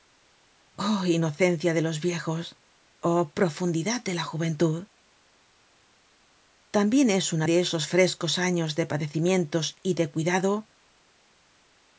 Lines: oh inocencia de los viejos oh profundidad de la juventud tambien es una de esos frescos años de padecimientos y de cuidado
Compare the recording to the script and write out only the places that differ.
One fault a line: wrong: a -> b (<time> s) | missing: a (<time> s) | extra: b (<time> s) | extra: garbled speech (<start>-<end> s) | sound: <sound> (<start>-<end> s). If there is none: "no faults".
no faults